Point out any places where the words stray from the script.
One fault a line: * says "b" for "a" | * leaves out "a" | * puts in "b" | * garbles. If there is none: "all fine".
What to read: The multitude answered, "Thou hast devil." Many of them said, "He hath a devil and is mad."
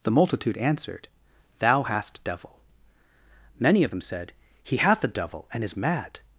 all fine